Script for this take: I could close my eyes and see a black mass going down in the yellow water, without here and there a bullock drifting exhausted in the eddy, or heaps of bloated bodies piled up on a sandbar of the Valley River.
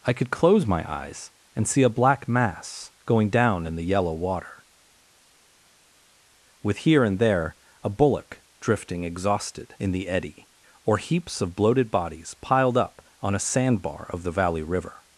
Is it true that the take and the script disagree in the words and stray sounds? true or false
true